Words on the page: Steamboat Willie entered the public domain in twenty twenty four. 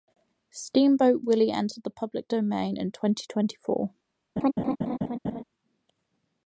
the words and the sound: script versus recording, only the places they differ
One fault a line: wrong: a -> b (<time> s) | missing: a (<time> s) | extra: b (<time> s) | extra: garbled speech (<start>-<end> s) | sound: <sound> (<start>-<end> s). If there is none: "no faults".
sound: laugh (4.4-5.4 s)